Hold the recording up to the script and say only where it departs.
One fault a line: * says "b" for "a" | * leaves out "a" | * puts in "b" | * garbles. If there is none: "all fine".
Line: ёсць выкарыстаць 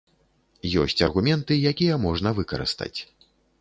* puts in "аргументы якія можна"